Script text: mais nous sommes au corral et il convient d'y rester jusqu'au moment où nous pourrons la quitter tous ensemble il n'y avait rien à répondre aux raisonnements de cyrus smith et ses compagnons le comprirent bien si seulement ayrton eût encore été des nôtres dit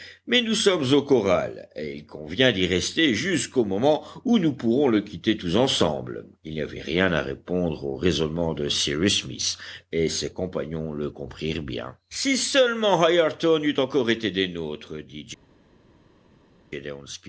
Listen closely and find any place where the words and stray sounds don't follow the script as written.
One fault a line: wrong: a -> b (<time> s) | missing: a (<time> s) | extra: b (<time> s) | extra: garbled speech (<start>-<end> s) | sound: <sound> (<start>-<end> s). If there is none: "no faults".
wrong: la -> le (4.9 s)